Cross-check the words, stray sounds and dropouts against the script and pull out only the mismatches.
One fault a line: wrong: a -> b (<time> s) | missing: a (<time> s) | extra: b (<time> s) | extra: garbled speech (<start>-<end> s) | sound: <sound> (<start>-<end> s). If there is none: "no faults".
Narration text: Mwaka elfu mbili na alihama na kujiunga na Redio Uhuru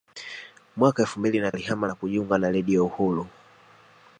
no faults